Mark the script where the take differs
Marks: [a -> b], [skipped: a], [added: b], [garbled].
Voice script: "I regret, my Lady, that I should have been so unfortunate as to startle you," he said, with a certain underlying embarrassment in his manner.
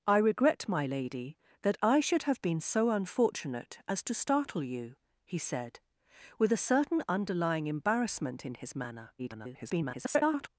"I regret, my Lady, that I should have been so unfortunate as to startle you," he said, with a certain underlying embarrassment in his manner. [garbled]